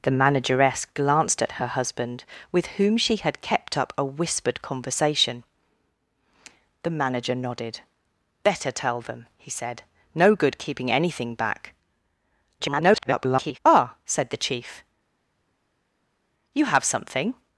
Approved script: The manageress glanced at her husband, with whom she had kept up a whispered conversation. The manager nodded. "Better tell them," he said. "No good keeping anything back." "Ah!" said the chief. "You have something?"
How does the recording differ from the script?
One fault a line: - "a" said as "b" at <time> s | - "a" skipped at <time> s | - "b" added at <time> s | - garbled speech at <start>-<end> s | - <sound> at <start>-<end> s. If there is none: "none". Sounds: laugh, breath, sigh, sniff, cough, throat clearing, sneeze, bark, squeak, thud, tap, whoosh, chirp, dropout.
- garbled speech at 12.6-13.6 s